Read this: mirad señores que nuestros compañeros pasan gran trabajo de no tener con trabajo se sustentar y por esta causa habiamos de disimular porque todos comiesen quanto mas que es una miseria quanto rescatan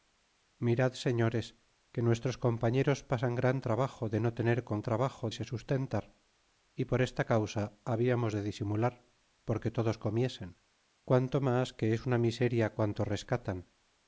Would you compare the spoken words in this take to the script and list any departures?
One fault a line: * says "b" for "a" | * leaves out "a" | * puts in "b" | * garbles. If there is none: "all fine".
all fine